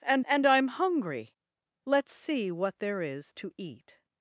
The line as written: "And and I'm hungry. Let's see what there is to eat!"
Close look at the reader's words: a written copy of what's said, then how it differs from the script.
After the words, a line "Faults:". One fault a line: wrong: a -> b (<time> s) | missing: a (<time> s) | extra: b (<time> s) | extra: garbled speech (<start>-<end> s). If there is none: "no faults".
"And and I'm hungry. Let's see what there is to eat!"
Faults:
no faults